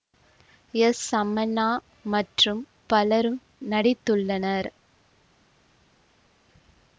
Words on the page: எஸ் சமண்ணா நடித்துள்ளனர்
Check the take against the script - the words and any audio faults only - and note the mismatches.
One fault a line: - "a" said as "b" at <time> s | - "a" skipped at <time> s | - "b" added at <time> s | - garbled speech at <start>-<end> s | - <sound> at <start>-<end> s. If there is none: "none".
- "மற்றும் பலரும்" added at 2.0 s